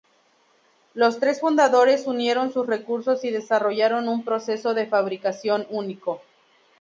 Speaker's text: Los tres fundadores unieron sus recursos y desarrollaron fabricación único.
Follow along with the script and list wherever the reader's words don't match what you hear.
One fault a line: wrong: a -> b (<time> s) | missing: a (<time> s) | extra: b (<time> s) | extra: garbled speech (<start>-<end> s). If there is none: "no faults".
extra: un proceso de (4.1 s)